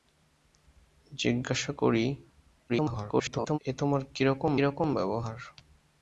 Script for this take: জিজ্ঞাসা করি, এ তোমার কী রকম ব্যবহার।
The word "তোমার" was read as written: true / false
true